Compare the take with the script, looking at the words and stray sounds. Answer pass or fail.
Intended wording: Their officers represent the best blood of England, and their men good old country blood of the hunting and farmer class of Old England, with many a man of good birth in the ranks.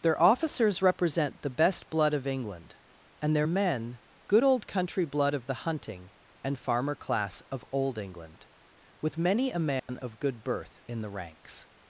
fail